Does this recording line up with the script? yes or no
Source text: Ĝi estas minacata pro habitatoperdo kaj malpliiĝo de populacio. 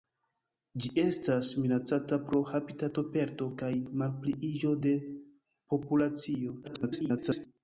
no